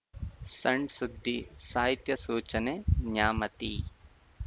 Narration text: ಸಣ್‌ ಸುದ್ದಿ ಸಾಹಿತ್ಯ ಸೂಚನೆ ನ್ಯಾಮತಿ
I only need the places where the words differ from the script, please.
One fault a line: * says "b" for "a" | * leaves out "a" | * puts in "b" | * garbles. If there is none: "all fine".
all fine